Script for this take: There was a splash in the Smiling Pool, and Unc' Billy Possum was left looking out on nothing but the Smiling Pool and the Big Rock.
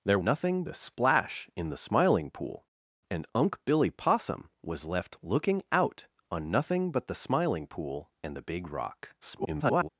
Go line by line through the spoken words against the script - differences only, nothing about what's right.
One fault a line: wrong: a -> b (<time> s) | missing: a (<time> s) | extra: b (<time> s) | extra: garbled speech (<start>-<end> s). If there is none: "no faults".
wrong: was -> nothing (0.2 s)
extra: garbled speech (9.2-9.9 s)